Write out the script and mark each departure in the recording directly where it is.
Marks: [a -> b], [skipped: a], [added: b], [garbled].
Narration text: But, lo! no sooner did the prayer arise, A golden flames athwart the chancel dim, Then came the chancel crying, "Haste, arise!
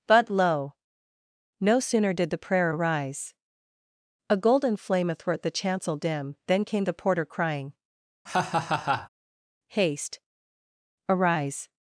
But, lo! no sooner did the prayer arise, A golden [flames -> flame] athwart the chancel dim, Then came the [chancel -> porter] crying, "Haste, arise!